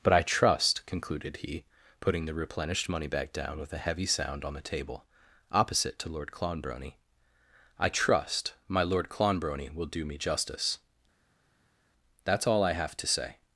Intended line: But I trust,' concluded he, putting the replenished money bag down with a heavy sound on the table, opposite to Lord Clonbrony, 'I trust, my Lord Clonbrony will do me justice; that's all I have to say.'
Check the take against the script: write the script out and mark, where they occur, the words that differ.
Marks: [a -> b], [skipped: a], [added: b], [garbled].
But I trust,' concluded he, putting the replenished money [bag -> back] down with a heavy sound on the table, opposite to Lord Clonbrony, 'I trust, my Lord Clonbrony will do me justice; that's all I have to say.'